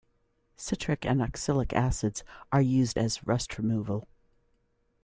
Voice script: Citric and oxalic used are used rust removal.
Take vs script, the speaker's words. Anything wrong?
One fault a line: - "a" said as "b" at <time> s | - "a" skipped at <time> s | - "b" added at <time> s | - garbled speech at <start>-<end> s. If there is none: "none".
- "used" said as "acids" at 1.7 s
- "as" added at 3.0 s